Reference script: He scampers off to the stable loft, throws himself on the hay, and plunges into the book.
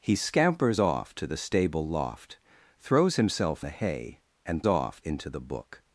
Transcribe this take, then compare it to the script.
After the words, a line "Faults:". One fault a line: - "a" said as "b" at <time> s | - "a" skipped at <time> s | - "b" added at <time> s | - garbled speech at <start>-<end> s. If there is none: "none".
He scampers off to the stable loft, throws himself the hay, and off into the book.
Faults:
- "on" skipped at 3.7 s
- "plunges" said as "off" at 4.7 s